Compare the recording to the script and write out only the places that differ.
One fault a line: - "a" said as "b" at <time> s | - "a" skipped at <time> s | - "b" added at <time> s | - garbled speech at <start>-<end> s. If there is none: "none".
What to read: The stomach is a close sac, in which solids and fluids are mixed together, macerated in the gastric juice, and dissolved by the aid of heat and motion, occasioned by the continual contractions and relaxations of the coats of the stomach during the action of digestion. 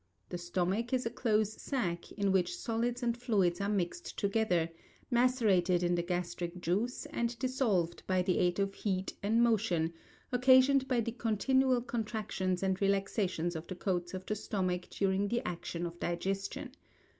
none